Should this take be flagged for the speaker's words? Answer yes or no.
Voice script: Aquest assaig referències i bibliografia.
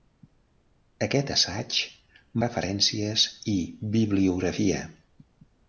no